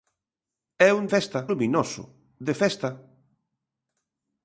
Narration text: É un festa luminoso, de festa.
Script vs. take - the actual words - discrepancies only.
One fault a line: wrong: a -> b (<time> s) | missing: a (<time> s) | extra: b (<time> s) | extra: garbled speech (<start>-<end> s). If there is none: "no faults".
no faults